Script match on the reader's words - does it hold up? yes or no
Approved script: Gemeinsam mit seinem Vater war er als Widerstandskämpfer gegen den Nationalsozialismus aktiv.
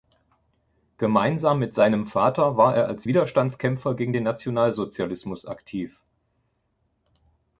yes